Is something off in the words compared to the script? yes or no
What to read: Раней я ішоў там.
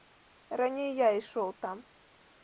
no